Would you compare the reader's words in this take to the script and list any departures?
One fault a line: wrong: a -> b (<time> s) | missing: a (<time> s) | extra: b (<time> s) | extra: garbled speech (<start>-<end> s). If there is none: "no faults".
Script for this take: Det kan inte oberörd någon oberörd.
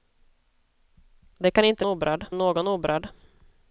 no faults